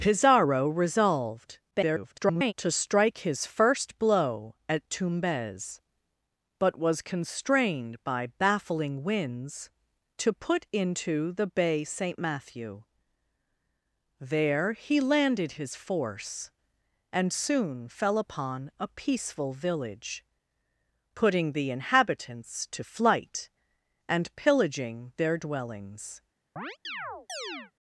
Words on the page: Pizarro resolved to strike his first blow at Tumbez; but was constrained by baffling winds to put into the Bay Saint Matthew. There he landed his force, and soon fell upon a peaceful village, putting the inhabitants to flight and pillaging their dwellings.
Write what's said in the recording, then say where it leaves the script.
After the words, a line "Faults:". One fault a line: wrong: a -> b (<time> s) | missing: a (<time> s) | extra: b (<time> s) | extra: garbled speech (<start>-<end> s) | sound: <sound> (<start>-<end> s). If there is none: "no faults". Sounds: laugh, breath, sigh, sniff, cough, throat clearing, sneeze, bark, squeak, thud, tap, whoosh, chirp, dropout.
Pizarro resolved [garbled] to strike his first blow at Tumbez; but was constrained by baffling winds to put into the Bay Saint Matthew. There he landed his force, and soon fell upon a peaceful village, putting the inhabitants to flight and pillaging their dwellings.
Faults:
extra: garbled speech (1.7-2.5 s)
sound: chirp (26.6-27.7 s)